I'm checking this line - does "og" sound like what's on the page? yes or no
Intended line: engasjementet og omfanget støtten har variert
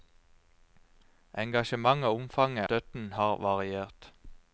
yes